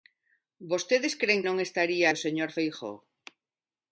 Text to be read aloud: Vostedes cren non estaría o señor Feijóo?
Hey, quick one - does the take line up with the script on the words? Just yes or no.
yes